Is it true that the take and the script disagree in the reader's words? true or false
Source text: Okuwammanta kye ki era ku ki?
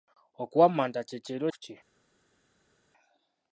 false